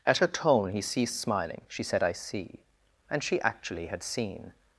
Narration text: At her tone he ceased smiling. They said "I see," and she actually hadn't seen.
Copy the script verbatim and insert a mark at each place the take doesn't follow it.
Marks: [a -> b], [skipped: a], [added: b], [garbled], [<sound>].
At her tone he ceased smiling. [They -> She] said "I see," and she actually [hadn't -> had] seen.